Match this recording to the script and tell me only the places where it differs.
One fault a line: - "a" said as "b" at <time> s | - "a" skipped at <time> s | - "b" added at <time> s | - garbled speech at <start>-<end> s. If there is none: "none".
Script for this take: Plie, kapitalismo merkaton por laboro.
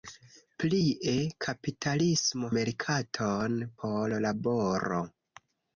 none